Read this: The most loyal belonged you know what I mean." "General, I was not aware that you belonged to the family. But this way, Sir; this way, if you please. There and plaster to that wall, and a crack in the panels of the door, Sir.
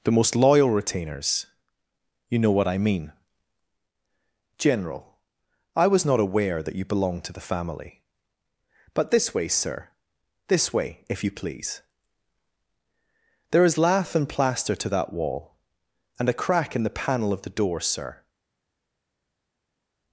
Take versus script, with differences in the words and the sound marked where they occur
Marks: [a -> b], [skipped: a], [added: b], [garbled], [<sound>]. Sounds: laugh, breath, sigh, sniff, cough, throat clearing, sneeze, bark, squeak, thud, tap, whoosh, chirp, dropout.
The most loyal [belonged -> retainers] you know what I mean." "General, I was not aware that you belonged to the family. But this way, Sir; this way, if you please. There [added: is lath] and plaster to that wall, and a crack in the [panels -> panel] of the door, Sir.